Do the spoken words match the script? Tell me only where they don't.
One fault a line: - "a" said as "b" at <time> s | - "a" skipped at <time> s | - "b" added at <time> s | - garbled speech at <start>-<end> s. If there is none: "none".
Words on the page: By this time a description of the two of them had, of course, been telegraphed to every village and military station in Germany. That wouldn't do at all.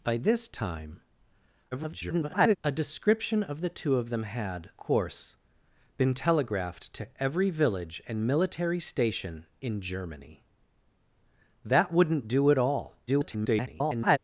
- garbled speech at 1.7-2.6 s
- "of" skipped at 4.7 s
- garbled speech at 13.1-14.2 s